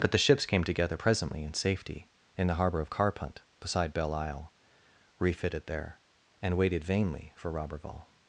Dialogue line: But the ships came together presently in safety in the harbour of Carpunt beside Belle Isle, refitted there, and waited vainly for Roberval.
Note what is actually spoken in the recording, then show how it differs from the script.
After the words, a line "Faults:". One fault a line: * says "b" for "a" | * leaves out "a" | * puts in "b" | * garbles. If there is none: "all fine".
But the ships came together presently in safety in the harbour of Carpunt beside Belle Isle, refitted there, and waited vainly for Roberval.
Faults:
all fine